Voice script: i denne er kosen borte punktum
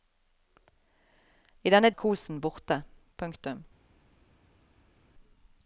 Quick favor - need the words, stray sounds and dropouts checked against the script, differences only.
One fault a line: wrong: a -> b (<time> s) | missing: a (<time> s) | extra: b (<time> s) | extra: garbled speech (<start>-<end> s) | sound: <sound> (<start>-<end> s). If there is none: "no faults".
no faults